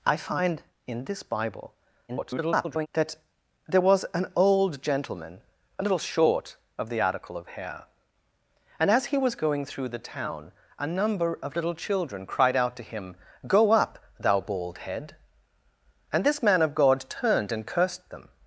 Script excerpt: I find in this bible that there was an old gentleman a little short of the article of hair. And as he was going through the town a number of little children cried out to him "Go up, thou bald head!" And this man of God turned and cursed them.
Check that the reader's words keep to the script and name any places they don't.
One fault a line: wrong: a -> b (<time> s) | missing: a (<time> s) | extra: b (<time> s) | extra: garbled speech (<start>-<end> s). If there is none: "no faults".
extra: garbled speech (2.1-2.9 s)